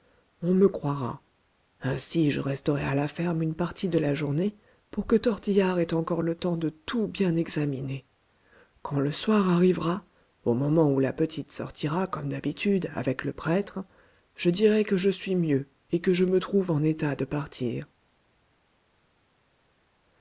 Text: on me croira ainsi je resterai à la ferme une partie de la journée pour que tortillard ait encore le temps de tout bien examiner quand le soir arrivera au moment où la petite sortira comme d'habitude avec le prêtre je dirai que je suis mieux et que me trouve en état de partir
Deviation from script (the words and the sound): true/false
true